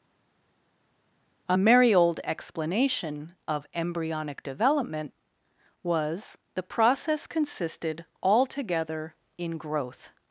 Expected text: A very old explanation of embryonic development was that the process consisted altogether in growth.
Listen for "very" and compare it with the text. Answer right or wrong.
wrong